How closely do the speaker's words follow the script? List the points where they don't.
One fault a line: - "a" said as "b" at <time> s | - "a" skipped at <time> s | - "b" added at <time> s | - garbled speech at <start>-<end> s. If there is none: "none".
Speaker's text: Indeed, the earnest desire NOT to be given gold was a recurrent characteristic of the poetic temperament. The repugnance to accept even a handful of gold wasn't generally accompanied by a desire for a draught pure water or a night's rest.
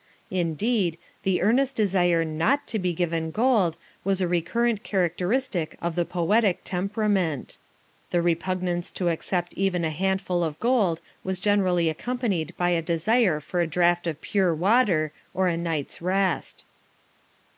- "wasn't" said as "was" at 11.2 s
- "of" added at 14.1 s